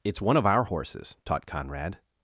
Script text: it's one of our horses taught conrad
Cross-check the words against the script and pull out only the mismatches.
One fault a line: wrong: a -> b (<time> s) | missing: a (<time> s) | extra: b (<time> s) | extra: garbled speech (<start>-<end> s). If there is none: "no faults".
no faults